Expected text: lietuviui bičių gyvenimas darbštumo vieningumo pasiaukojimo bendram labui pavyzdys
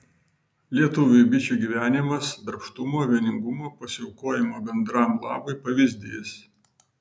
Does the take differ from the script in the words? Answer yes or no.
no